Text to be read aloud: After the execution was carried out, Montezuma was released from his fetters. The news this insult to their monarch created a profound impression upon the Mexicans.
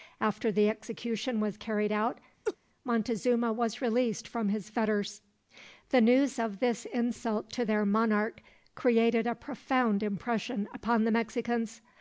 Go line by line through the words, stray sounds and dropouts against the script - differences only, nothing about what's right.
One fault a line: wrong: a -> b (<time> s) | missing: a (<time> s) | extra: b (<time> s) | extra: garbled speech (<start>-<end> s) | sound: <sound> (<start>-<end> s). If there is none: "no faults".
sound: laugh (2.4-2.6 s)
extra: of (6.4 s)